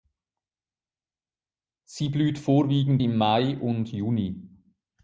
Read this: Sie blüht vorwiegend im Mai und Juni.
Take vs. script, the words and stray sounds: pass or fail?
pass